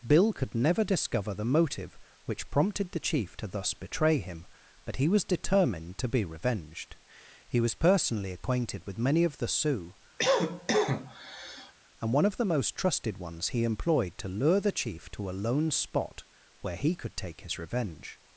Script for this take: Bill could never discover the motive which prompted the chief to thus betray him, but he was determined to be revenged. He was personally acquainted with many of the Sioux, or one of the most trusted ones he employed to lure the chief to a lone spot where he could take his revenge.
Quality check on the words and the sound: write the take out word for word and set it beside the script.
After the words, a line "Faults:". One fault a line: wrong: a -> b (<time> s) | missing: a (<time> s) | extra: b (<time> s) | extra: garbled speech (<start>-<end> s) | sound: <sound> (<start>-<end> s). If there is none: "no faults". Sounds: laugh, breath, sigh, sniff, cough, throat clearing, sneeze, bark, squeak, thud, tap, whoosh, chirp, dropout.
Bill could never discover the motive which prompted the chief to thus betray him, but he was determined to be revenged. He was personally acquainted with many of the Sioux, and one of the most trusted ones he employed to lure the chief to a lone spot where he could take his revenge.
Faults:
sound: cough (10.2-11.7 s)
wrong: or -> and (12.0 s)